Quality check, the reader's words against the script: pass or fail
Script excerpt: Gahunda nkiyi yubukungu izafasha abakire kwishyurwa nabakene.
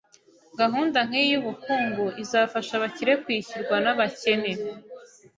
pass